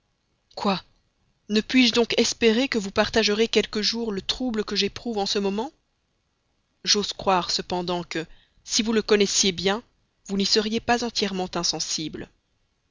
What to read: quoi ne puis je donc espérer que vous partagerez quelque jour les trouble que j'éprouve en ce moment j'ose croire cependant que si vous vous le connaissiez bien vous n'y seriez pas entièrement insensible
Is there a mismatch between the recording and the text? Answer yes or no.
yes